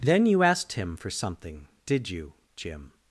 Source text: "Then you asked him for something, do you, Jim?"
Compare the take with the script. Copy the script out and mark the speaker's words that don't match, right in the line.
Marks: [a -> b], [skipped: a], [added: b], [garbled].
"Then you asked him for something, [do -> did] you, Jim?"